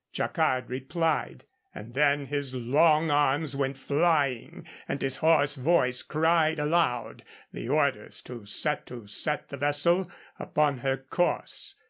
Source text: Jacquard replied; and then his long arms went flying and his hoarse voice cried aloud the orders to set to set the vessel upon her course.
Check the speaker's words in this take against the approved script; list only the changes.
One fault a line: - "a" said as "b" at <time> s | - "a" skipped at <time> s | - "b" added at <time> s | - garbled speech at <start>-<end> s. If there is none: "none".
none